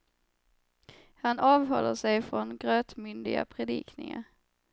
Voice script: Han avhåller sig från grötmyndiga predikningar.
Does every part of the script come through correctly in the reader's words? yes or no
yes